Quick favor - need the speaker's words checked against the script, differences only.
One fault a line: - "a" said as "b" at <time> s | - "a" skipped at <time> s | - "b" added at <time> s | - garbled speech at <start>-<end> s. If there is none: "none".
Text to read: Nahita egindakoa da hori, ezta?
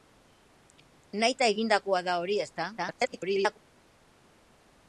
- garbled speech at 2.8-3.6 s